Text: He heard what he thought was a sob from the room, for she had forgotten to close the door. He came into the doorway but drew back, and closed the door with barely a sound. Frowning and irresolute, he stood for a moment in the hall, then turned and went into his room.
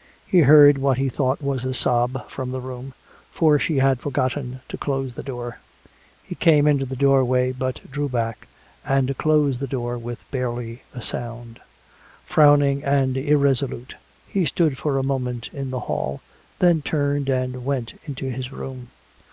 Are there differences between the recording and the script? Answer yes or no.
no